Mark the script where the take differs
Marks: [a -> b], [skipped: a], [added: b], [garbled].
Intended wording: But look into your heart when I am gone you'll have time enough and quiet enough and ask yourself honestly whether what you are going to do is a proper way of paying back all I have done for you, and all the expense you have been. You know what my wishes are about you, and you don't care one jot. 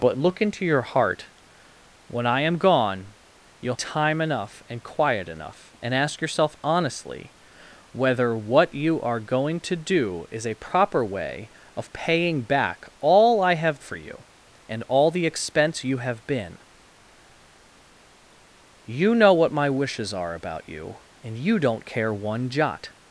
But look into your heart when I am gone you'll [skipped: have] time enough and quiet enough and ask yourself honestly whether what you are going to do is a proper way of paying back all I have [skipped: done] for you, and all the expense you have been. You know what my wishes are about you, and you don't care one jot.